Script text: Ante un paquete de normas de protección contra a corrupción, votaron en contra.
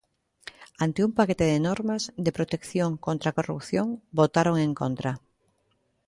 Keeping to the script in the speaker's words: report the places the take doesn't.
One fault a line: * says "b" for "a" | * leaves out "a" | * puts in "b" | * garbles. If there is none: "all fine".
all fine